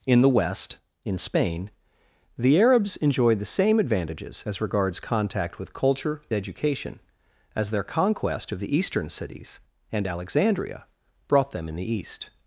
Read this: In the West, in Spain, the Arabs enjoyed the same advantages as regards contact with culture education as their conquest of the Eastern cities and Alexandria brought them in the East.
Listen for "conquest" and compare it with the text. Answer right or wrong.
right